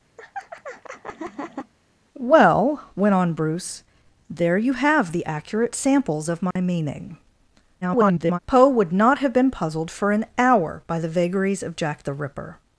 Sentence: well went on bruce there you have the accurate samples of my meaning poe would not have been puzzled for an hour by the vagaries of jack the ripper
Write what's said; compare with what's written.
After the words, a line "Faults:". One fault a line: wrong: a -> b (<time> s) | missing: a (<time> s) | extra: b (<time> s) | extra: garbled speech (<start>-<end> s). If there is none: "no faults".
well went on bruce there you have the accurate samples of my meaning [garbled] poe would not have been puzzled for an hour by the vagaries of jack the ripper
Faults:
extra: garbled speech (7.8-8.4 s)